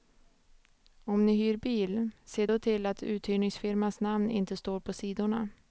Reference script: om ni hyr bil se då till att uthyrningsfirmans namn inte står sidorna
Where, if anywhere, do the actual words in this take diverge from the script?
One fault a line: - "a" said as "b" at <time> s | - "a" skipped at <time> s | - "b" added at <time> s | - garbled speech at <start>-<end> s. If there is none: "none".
- "på" added at 4.8 s